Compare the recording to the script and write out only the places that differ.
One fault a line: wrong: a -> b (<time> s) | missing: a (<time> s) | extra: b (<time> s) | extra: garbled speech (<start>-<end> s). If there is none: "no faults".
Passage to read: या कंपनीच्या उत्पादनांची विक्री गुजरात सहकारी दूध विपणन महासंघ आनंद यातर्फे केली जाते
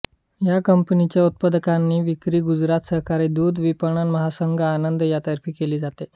no faults